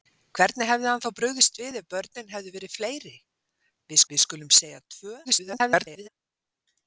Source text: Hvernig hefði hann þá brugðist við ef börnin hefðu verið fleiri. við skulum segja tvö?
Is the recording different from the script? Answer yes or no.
yes